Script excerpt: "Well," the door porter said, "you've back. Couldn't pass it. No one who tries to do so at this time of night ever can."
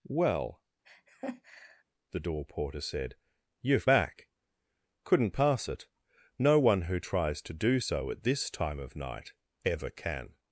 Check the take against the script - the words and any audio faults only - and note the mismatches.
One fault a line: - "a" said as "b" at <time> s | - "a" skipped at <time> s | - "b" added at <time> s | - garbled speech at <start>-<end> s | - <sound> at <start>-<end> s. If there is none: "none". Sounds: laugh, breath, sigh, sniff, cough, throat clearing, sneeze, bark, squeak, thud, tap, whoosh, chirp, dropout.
- laugh at 0.8-1.8 s